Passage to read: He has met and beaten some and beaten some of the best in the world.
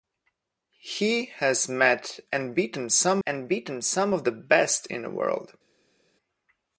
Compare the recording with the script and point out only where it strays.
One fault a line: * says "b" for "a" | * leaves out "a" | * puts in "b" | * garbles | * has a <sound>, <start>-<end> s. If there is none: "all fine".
all fine